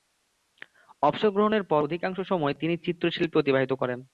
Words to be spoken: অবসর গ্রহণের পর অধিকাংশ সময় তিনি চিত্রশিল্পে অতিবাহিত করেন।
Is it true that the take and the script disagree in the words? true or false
false